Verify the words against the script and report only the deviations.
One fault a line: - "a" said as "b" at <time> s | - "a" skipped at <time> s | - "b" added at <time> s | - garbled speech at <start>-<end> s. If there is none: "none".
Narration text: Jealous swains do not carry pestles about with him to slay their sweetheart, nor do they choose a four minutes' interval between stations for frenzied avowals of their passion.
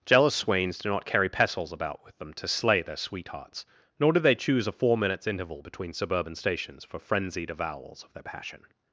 - "him" said as "them" at 2.2 s
- "sweetheart" said as "sweethearts" at 3.0 s
- "suburban" added at 5.9 s